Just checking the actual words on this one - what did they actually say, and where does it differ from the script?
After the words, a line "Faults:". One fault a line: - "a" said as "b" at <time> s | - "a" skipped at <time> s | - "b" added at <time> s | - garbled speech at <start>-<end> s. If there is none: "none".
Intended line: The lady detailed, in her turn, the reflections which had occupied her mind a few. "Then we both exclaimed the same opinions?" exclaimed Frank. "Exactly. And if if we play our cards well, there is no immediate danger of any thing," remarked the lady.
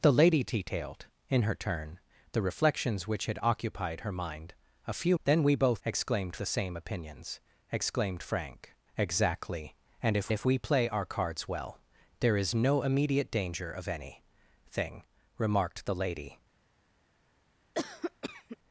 The lady detailed, in her turn, the reflections which had occupied her mind a few. "Then we both exclaimed the same opinions?" exclaimed Frank. "Exactly. And if if we play our cards well, there is no immediate danger of any thing," remarked the lady.
Faults:
none